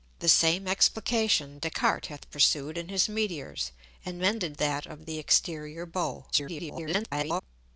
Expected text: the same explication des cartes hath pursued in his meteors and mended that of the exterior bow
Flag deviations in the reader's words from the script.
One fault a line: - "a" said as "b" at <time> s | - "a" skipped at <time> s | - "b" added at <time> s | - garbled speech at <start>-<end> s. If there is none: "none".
- garbled speech at 6.3-7.4 s